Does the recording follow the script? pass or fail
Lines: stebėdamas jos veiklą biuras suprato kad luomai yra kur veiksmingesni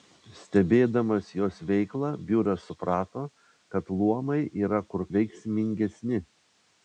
pass